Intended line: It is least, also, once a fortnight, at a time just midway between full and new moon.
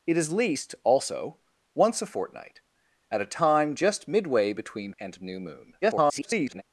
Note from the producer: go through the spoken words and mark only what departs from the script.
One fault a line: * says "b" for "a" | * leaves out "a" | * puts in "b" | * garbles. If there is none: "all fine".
* leaves out "full"
* garbles